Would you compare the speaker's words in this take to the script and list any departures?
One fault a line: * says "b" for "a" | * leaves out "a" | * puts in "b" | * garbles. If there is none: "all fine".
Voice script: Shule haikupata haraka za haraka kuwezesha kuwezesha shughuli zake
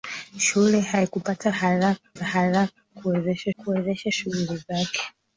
all fine